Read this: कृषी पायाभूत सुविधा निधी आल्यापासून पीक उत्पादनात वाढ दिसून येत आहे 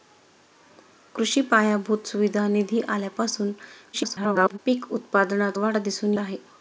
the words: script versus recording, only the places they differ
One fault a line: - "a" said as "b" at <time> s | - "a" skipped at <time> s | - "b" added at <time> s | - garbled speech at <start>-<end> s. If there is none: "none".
- garbled speech at 3.9-4.6 s
- "येत" skipped at 6.1 s